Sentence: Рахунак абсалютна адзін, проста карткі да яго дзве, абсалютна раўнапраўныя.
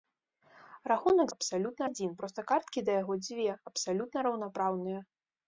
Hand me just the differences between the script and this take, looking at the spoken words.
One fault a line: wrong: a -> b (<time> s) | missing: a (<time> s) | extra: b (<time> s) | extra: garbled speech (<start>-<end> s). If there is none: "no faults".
no faults